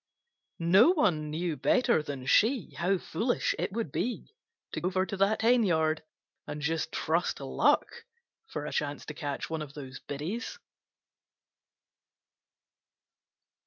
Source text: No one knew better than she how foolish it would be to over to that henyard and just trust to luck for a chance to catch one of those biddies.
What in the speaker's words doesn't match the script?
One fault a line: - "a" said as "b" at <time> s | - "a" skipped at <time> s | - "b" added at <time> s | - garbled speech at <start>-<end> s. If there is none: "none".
none